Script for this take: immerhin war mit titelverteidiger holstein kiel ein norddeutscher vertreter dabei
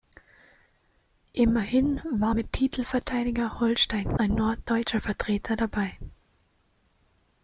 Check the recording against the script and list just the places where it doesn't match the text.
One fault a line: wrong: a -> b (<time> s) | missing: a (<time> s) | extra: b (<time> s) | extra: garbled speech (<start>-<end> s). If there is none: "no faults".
missing: kiel (4.2 s)